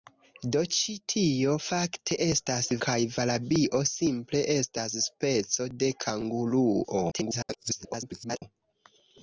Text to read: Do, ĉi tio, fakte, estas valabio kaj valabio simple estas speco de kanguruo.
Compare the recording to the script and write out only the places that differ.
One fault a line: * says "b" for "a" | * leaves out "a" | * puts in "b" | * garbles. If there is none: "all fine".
* leaves out "valabio"
* garbles